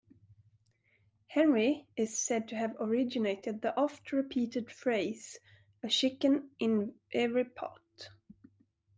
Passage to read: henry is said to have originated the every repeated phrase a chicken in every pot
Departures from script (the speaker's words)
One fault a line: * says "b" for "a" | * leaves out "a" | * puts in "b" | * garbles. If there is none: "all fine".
* says "oft" for "every"